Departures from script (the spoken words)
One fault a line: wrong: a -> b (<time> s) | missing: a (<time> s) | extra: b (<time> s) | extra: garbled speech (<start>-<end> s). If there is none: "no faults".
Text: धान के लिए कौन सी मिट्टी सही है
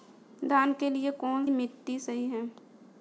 missing: सी (1.4 s)